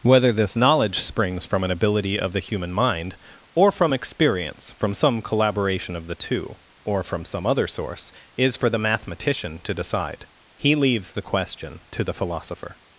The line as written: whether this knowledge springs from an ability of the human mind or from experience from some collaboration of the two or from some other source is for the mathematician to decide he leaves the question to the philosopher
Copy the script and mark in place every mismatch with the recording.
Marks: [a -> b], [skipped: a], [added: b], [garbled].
whether this knowledge springs from an ability of the human mind or from experience from some collaboration of the two or from some other source is for the mathematician to decide he leaves the question to the philosopher